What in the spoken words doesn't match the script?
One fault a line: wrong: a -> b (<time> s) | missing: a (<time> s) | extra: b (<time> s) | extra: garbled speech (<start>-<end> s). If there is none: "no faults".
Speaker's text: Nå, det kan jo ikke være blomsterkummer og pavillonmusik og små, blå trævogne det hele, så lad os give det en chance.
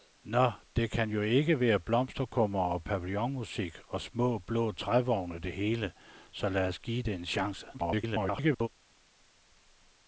extra: garbled speech (7.7-8.7 s)